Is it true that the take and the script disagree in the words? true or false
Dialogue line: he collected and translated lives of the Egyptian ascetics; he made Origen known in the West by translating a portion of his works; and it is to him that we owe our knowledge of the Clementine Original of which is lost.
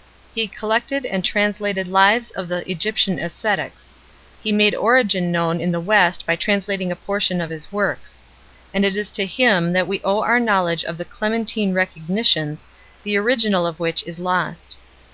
true